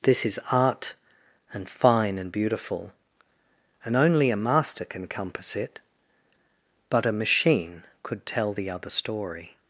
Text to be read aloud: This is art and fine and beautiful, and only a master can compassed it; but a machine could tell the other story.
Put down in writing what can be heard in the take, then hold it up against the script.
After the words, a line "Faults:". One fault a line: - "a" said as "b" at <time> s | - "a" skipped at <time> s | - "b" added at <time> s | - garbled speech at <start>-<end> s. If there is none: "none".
This is art and fine and beautiful, and only a master can compass it; but a machine could tell the other story.
Faults:
- "compassed" said as "compass" at 5.1 s